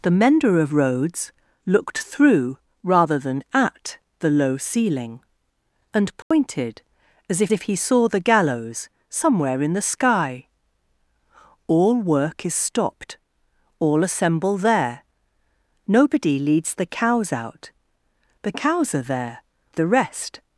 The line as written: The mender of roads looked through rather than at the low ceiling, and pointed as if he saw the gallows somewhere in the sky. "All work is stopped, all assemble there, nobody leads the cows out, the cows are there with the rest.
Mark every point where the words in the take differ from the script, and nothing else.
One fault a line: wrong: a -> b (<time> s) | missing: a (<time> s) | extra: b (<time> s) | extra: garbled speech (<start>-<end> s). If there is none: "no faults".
extra: if (7.5 s)
missing: with (19.4 s)